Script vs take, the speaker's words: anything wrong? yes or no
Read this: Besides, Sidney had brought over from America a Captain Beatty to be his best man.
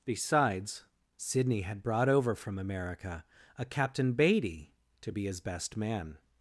no